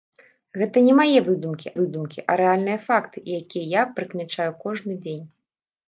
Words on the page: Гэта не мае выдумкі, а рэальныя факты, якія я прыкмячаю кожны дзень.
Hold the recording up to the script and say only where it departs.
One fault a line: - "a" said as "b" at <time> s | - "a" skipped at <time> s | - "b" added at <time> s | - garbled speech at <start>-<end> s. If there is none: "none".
- "выдумкі" added at 1.8 s